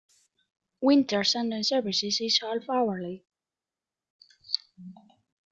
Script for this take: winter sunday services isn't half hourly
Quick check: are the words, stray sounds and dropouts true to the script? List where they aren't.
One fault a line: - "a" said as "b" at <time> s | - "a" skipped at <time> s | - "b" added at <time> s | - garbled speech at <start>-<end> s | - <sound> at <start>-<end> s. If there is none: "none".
- "isn't" said as "is" at 2.2 s